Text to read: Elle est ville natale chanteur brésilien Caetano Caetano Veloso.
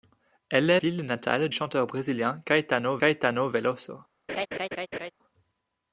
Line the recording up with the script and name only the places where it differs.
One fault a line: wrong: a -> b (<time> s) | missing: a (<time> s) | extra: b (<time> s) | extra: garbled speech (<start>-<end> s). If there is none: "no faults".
no faults